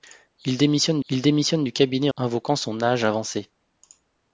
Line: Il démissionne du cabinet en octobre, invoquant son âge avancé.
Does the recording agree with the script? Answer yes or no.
no